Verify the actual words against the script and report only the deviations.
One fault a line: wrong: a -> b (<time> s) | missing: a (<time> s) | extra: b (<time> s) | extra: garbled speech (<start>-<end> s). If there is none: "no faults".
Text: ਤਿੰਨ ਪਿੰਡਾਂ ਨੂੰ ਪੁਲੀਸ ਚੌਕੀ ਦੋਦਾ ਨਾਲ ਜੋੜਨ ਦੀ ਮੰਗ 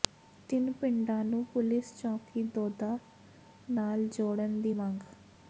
no faults